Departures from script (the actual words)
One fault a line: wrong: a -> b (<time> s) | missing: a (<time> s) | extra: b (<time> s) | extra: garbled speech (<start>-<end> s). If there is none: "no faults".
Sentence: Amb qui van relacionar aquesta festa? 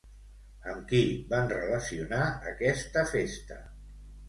no faults